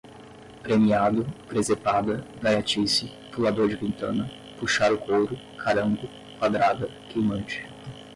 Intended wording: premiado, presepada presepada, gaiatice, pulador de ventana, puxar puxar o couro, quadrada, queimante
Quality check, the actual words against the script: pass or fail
fail